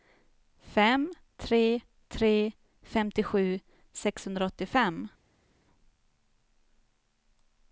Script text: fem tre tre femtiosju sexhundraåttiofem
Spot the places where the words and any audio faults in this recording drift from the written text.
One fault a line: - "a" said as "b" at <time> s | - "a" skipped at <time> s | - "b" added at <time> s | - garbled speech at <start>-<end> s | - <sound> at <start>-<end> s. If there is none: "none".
none